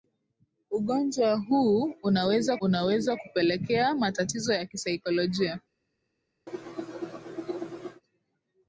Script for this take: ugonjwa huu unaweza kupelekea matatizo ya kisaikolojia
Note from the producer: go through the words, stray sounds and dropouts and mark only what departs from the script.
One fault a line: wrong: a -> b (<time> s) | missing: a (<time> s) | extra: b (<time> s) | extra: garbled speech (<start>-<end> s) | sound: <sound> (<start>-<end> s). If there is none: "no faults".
extra: unaweza (2.6 s)
sound: cough (6.5-8.0 s)